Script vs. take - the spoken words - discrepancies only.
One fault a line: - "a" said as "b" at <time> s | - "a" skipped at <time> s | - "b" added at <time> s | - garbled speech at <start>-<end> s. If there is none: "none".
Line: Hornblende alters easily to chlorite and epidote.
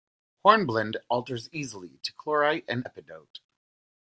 none